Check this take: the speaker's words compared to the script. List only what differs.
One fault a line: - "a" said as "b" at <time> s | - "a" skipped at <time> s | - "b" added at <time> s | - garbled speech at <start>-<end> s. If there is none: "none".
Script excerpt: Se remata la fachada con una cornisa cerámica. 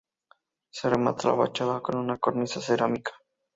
none